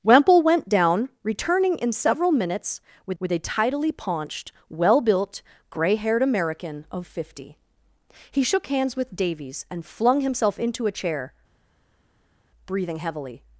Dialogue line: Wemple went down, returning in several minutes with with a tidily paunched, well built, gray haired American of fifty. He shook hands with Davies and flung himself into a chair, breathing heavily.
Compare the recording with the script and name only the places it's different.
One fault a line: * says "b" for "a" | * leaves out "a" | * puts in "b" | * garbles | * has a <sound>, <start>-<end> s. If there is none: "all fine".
all fine